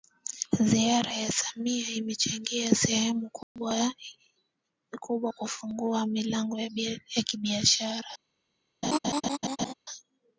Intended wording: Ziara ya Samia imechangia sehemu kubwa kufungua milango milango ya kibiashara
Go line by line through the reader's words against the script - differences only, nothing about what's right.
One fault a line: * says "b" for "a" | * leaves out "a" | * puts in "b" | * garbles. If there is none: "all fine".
* leaves out "milango"